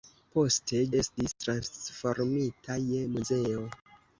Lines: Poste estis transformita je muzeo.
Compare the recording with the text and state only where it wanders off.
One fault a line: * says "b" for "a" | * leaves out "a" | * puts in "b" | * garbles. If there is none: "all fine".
all fine